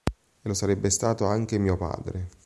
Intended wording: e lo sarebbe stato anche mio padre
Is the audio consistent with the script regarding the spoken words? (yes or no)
yes